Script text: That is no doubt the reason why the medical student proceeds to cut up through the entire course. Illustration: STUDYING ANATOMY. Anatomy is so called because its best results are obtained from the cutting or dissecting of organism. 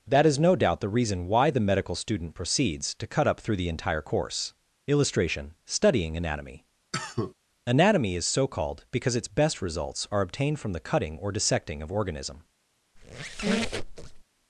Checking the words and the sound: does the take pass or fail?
fail